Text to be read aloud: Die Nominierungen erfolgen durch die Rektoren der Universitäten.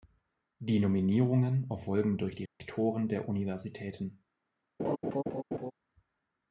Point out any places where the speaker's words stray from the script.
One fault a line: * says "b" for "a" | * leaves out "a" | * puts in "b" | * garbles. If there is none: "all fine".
all fine